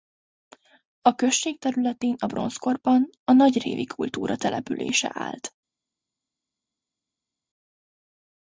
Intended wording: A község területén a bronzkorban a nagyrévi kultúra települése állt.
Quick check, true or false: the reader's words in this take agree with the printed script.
true